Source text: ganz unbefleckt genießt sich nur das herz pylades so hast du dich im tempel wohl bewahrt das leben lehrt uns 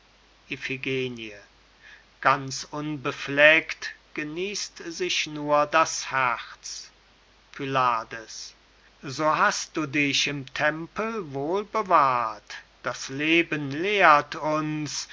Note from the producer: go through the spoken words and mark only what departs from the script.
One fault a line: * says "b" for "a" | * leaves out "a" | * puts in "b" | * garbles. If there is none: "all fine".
all fine